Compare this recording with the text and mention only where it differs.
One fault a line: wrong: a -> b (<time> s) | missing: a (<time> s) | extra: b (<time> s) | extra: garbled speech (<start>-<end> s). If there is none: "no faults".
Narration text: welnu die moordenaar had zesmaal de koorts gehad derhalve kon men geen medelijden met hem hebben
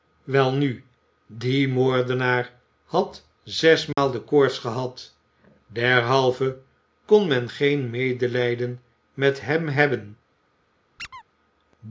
no faults